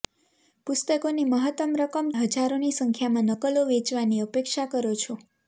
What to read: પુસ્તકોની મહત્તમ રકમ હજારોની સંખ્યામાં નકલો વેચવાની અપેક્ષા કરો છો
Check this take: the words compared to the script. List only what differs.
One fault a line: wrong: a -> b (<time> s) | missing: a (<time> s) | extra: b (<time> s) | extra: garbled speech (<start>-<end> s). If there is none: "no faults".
no faults